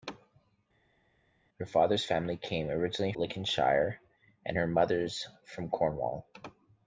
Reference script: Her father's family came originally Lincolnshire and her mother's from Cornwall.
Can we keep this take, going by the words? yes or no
yes